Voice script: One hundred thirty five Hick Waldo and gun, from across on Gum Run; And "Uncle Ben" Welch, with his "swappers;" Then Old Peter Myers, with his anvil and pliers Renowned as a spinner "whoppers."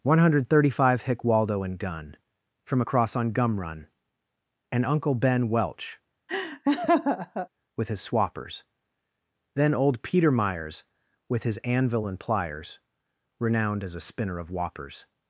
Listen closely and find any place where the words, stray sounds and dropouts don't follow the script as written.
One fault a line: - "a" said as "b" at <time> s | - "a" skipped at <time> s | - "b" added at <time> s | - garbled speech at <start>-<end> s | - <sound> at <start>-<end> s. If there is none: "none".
- laugh at 6.3-7.5 s
- "of" added at 14.4 s